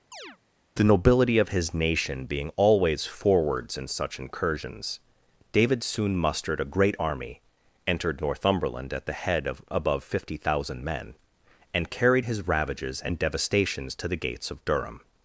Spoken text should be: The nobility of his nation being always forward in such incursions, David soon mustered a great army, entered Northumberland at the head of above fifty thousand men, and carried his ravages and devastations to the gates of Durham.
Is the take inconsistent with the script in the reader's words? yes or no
yes